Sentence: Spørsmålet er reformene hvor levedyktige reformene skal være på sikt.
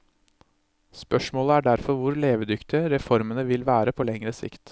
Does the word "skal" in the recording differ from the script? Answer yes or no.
yes